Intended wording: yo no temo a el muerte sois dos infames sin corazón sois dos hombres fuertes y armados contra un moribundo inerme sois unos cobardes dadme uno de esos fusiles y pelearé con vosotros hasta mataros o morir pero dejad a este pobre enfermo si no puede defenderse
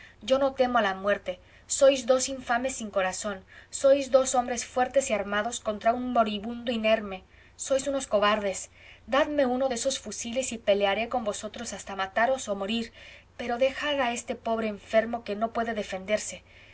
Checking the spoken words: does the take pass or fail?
fail